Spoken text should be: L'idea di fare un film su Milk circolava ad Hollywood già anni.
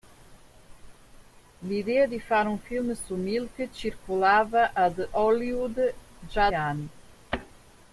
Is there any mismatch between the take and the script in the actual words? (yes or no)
no